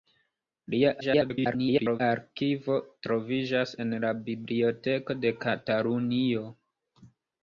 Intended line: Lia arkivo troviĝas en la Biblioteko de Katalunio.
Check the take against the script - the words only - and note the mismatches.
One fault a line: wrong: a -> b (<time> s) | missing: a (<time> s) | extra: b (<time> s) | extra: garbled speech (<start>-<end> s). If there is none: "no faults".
extra: garbled speech (1.0-2.0 s)